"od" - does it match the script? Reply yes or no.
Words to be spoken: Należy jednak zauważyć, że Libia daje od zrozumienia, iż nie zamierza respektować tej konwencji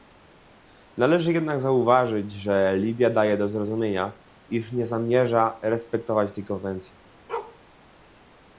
no